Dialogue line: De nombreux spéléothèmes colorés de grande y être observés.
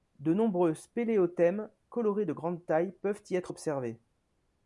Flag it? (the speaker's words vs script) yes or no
yes